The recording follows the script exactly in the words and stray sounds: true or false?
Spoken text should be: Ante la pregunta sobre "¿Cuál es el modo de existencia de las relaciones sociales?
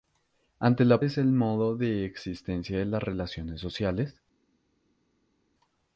false